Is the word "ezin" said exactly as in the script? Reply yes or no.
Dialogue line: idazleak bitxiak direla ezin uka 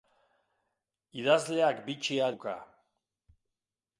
no